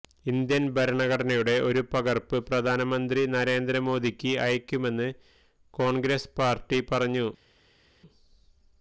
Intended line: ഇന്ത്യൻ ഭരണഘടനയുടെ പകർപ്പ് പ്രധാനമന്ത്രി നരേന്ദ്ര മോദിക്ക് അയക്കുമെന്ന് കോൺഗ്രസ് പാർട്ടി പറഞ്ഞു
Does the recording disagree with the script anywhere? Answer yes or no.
yes